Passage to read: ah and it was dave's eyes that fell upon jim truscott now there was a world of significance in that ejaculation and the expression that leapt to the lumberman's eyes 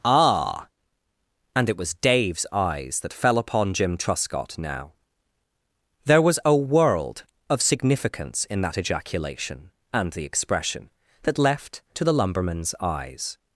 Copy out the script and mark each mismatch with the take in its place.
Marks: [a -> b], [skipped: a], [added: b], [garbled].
ah and it was dave's eyes that fell upon jim truscott now there was a world of significance in that ejaculation and the expression that [leapt -> left] to the lumberman's eyes